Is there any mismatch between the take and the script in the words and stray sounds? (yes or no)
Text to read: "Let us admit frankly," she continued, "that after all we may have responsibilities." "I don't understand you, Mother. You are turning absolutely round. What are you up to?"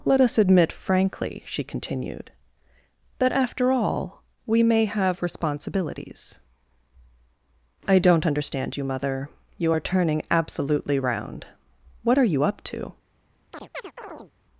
yes